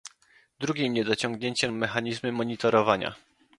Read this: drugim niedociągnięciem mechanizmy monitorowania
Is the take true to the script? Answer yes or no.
yes